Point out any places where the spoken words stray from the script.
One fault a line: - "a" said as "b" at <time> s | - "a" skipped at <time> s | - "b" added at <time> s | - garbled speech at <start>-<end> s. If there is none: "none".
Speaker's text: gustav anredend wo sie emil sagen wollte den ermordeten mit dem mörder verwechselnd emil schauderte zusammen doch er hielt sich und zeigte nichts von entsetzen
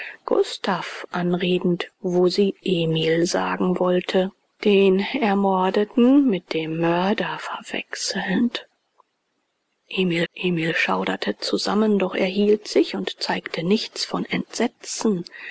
- "emil" added at 10.3 s